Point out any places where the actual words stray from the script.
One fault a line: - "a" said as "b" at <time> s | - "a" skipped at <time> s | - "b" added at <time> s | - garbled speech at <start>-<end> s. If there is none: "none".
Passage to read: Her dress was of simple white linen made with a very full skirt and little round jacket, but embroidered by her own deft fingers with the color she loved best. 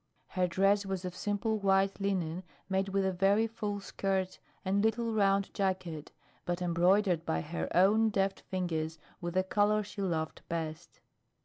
none